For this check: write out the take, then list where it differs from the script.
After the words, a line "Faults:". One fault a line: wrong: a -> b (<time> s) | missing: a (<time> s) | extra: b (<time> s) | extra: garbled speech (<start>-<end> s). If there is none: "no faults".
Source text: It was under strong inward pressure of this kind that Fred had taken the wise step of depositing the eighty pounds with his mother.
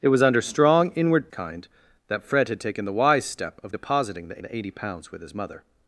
It was under strong inward kind that Fred had taken the wise step of depositing the the eighty pounds with his mother.
Faults:
missing: pressure of this (1.3 s)
extra: the (4.4 s)